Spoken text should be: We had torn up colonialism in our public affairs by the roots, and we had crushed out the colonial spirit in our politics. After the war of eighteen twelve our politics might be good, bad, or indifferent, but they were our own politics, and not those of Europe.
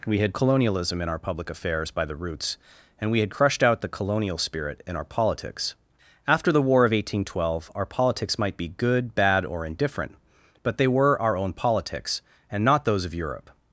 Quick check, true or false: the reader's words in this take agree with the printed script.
false